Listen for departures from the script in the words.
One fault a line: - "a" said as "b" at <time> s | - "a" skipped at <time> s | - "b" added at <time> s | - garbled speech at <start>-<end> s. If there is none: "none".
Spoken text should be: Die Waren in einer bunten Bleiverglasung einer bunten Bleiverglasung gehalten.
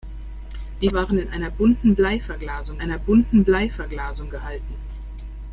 none